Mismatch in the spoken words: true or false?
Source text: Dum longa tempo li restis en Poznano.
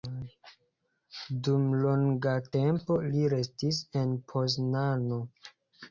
false